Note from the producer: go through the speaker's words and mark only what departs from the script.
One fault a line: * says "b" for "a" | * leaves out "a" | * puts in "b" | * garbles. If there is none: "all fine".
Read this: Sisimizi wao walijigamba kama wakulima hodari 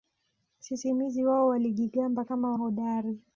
* leaves out "wakulima"